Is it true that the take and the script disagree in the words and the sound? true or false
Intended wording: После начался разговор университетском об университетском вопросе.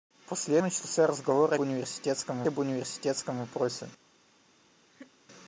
true